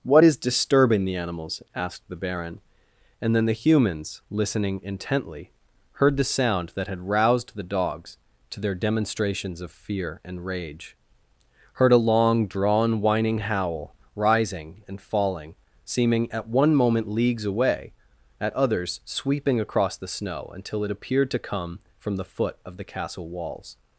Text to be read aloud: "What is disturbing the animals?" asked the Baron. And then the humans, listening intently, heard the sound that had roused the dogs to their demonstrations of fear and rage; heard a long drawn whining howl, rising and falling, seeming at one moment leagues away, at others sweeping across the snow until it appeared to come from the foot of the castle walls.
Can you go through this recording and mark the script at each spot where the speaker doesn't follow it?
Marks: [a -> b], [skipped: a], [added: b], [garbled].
"What is disturbing the animals?" asked the Baron. And then the humans, listening intently, heard the sound that had roused the dogs to their demonstrations of fear and rage; heard a long drawn whining howl, rising and falling, seeming at one moment leagues away, at others sweeping across the snow until it appeared to come from the foot of the castle walls.